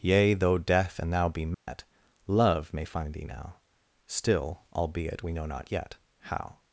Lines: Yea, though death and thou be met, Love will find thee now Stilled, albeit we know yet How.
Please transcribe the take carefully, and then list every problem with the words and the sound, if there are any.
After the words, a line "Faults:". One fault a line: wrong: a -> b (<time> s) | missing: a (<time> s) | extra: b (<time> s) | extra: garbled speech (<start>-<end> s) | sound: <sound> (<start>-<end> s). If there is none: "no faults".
Yea, though death and thou be met, Love may find thee now Still, albeit we know not yet How.
Faults:
sound: dropout (1.5-1.7 s)
wrong: will -> may (2.7 s)
wrong: Stilled -> Still (4.1 s)
extra: not (5.4 s)